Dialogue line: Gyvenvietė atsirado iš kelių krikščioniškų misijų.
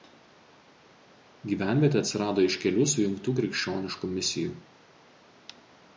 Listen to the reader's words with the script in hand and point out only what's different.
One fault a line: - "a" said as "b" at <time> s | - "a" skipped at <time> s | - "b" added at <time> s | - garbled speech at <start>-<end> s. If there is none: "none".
- "sujungtų" added at 3.0 s